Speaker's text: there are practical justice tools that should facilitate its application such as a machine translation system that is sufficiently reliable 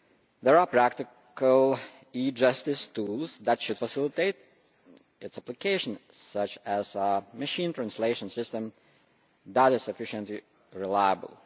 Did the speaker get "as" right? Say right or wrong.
right